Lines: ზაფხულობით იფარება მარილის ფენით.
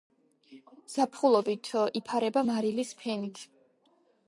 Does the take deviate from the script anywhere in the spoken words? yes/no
no